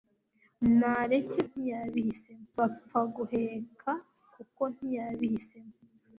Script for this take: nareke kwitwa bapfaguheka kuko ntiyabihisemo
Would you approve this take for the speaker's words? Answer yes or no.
no